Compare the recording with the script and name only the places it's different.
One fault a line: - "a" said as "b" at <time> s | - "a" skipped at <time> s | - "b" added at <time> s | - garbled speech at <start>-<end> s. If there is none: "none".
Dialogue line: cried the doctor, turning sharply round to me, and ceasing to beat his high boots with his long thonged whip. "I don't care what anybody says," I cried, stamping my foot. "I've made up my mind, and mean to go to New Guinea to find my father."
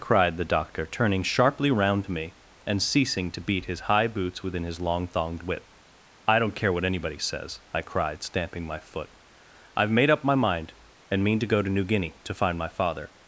- "with" said as "within" at 4.4 s